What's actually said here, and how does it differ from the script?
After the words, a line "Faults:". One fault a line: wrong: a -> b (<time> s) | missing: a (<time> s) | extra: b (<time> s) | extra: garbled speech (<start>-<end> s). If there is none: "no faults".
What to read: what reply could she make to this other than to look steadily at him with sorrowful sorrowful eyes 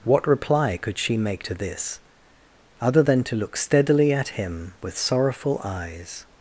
what reply could she make to this other than to look steadily at him with sorrowful eyes
Faults:
missing: sorrowful (5.6 s)